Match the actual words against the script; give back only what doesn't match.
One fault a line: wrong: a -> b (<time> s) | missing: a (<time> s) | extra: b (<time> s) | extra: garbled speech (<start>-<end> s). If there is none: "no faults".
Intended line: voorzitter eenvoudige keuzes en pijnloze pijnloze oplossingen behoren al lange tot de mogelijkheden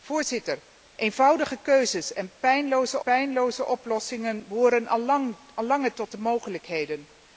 no faults